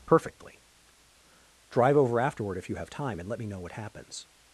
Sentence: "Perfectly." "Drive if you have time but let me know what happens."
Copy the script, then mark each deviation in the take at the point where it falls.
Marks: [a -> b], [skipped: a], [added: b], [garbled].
"Perfectly." "Drive [added: over afterward] if you have time [but -> and] let me know what happens."